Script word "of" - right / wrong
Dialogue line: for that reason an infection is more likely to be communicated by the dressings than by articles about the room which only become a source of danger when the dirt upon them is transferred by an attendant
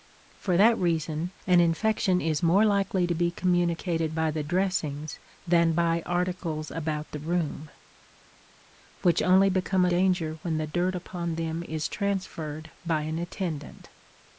wrong